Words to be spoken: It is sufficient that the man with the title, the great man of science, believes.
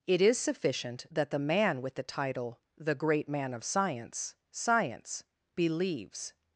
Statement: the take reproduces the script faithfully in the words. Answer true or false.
false